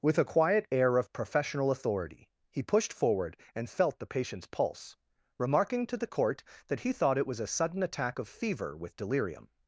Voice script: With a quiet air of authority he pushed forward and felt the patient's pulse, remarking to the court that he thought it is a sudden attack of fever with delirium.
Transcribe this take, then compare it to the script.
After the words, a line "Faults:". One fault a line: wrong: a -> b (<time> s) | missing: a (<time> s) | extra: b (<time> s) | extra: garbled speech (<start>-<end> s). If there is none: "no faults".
With a quiet air of professional authority he pushed forward and felt the patient's pulse, remarking to the court that he thought it was a sudden attack of fever with delirium.
Faults:
extra: professional (1.1 s)
wrong: is -> was (7.3 s)